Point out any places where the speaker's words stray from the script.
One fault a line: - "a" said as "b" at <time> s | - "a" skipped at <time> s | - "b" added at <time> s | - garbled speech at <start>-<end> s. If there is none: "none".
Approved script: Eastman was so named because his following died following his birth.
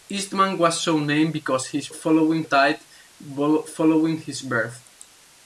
none